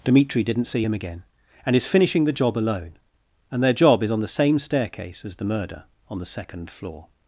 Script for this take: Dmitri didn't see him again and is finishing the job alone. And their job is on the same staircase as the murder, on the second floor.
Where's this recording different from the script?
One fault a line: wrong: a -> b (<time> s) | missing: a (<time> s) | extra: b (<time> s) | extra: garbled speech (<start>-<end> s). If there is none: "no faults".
no faults